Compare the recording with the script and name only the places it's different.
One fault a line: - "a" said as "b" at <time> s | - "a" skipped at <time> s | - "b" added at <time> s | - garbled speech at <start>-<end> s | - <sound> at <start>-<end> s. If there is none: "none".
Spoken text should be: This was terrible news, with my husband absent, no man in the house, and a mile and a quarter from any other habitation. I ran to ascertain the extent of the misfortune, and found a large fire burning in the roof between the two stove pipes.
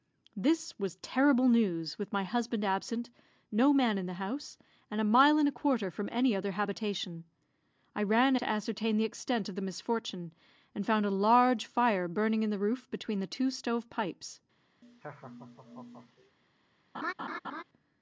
- laugh at 14.8-16.4 s
- laugh at 16.9-17.6 s